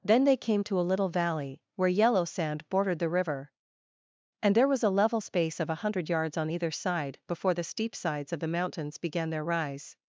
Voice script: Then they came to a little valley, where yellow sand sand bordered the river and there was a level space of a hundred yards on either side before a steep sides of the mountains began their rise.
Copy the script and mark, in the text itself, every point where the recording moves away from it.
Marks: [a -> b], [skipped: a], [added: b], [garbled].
Then they came to a little valley, where yellow sand [skipped: sand] bordered the river and there was a level space of a hundred yards on either side before [a -> the] steep sides of the mountains began their rise.